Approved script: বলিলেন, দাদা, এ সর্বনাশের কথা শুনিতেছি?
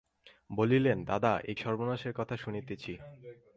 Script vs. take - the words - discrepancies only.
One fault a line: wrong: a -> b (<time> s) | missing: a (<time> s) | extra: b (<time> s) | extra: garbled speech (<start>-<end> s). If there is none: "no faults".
no faults